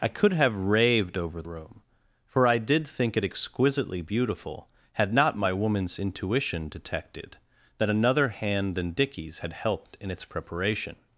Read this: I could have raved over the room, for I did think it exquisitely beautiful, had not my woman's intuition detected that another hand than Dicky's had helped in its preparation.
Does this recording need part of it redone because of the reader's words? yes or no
yes